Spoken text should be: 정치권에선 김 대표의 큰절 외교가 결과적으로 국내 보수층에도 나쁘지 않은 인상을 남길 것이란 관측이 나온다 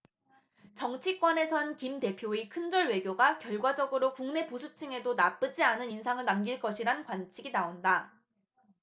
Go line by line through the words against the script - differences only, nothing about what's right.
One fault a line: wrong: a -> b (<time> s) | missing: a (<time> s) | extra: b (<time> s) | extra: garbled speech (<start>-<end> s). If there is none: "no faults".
no faults